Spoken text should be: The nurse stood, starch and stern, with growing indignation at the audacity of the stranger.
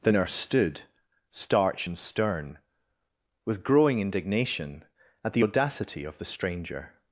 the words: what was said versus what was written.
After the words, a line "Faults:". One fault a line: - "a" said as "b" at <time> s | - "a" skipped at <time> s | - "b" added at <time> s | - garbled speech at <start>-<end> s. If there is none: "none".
The nurse stood, starch and stern, with growing indignation at the audacity of the stranger.
Faults:
none